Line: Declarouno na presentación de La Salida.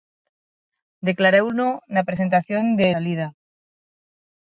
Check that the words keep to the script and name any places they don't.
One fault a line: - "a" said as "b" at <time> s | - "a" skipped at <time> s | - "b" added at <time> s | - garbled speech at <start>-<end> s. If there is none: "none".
- "La" skipped at 2.9 s